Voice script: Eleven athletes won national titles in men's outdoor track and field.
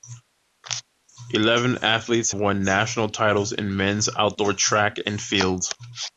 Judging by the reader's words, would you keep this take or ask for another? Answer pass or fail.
pass